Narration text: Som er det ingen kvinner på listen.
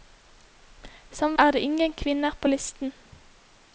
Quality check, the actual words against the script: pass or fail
pass